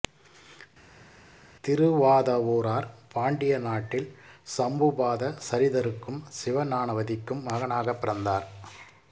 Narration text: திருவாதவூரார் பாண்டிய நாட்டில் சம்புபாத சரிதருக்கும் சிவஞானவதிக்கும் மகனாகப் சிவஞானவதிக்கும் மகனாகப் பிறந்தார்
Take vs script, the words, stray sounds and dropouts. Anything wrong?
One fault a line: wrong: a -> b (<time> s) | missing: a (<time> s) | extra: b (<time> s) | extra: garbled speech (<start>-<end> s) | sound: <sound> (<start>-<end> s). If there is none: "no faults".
missing: சிவஞானவதிக்கும் மகனாகப் (8.0 s)